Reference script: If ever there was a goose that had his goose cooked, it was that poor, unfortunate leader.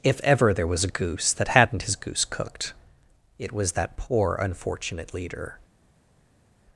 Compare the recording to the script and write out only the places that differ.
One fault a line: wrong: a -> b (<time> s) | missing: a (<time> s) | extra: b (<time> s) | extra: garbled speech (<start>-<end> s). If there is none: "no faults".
wrong: had -> hadn't (1.5 s)